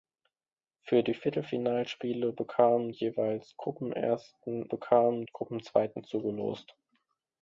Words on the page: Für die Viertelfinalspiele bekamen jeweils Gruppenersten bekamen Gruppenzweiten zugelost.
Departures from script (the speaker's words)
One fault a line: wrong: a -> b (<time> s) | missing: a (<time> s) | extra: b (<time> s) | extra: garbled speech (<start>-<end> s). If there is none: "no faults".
no faults